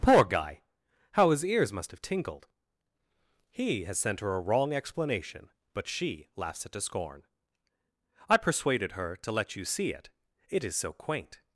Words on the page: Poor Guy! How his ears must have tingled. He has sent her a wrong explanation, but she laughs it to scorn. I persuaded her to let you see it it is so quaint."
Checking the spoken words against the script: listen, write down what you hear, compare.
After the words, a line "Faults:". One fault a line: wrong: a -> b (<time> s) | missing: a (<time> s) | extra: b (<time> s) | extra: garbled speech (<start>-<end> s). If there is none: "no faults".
Poor Guy! How his ears must have tingled. He has sent her a wrong explanation, but she laughs it to scorn. I persuaded her to let you see it it is so quaint."
Faults:
no faults